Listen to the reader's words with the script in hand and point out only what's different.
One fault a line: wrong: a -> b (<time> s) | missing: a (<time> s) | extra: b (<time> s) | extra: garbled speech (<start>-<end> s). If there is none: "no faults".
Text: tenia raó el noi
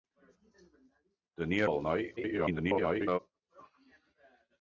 missing: raó (1.7 s)
extra: garbled speech (2.2-3.2 s)